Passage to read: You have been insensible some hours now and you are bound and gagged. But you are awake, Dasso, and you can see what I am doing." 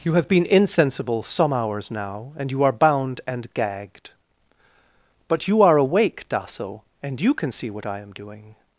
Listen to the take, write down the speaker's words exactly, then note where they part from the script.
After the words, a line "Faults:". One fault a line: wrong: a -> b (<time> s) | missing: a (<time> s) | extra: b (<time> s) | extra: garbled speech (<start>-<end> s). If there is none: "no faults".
You have been insensible some hours now and you are bound and gagged. But you are awake, Dasso, and you can see what I am doing."
Faults:
no faults